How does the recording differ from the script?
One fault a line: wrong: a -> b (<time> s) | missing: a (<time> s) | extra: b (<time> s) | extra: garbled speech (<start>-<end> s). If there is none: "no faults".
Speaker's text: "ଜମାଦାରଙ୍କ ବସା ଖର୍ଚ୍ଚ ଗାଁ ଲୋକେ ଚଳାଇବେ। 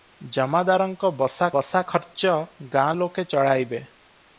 extra: ବସା (1.5 s)